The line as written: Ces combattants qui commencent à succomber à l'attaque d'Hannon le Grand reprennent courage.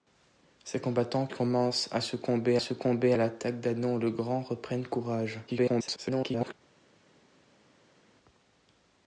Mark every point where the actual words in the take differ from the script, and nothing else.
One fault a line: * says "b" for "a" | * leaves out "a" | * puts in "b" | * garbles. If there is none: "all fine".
* leaves out "qui"
* puts in "succomber"
* garbles